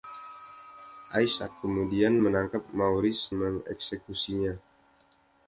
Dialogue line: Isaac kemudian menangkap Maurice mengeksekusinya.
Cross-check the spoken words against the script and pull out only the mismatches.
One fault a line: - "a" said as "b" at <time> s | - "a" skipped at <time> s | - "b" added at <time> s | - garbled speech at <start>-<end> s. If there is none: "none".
none